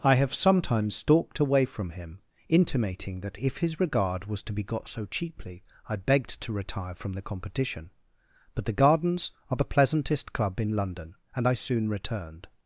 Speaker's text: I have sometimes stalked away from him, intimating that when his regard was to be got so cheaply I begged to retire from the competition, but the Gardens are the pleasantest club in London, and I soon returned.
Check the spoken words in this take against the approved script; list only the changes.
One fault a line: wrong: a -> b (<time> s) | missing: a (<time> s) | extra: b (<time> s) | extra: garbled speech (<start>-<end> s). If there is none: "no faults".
wrong: when -> if (3.4 s)